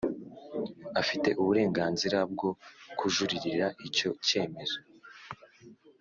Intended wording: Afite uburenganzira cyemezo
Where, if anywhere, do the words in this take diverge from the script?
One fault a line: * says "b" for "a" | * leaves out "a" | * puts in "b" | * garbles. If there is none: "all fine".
* puts in "bwo kujuririra icyo"